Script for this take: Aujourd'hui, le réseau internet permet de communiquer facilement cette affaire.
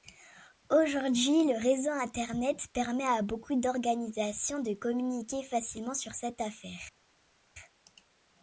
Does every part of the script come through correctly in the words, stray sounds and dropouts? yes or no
no